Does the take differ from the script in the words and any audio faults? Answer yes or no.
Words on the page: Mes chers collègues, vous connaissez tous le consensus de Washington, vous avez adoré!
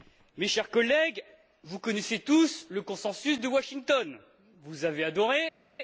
no